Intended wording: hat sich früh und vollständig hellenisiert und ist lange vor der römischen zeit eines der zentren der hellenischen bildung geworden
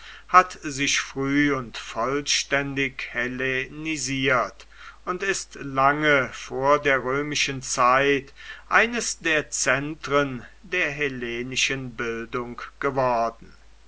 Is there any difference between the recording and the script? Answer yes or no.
no